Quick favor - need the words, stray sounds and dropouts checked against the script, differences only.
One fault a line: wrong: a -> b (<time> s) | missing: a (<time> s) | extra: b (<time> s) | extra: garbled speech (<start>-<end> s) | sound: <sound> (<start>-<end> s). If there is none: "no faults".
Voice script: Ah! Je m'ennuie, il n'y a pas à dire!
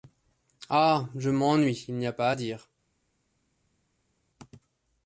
no faults